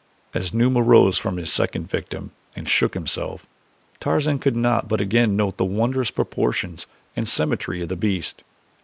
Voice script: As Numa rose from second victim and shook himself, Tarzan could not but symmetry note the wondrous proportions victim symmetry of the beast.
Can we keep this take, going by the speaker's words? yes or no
no